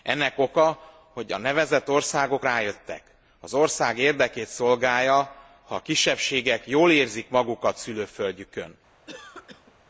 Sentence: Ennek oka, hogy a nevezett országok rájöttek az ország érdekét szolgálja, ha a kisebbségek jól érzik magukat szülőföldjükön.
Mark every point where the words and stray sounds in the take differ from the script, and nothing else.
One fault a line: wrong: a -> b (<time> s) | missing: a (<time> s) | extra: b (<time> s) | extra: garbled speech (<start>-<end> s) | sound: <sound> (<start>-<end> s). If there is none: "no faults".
sound: cough (9.1-9.8 s)